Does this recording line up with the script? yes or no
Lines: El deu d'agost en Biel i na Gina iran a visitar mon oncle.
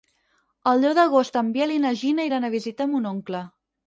yes